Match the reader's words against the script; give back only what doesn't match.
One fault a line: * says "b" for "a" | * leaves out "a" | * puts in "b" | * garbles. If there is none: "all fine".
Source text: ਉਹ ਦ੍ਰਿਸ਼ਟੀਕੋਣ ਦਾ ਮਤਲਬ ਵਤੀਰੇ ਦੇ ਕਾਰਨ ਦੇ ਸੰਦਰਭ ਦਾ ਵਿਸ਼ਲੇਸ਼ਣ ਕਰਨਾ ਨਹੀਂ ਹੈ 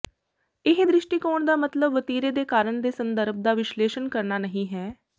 * says "ਇਹ" for "ਉਹ"